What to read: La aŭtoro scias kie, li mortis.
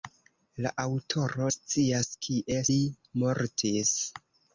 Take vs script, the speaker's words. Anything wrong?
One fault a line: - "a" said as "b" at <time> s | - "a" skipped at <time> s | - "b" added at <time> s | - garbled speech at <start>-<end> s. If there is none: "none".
none